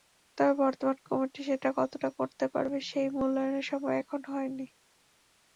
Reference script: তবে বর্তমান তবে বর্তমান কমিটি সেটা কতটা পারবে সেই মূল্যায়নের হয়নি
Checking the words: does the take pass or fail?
fail